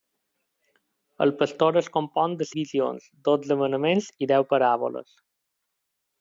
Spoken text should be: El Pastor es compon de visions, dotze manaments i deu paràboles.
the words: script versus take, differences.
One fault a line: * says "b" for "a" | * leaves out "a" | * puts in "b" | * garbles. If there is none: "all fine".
all fine